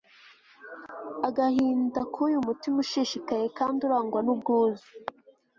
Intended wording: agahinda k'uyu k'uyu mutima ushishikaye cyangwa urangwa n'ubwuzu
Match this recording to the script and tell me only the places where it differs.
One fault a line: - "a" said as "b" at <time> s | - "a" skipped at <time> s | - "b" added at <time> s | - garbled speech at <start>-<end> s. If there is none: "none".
- "k'uyu" skipped at 2.4 s
- "cyangwa" said as "kandi" at 3.6 s